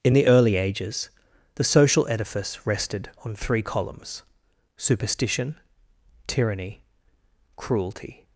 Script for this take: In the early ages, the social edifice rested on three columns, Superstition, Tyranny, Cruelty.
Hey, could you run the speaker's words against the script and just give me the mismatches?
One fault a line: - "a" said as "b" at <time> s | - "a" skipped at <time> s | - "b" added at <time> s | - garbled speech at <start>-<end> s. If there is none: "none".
none